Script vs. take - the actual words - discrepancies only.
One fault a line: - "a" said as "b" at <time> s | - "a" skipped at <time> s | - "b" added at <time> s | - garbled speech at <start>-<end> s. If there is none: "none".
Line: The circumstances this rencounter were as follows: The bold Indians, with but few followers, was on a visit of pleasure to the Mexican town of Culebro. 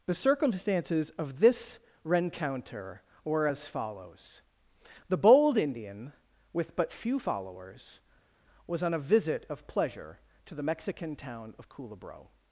- "of" added at 1.1 s
- "Indians" said as "Indian" at 5.6 s